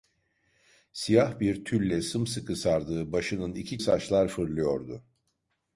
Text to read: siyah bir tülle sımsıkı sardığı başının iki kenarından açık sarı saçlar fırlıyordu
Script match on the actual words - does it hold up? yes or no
no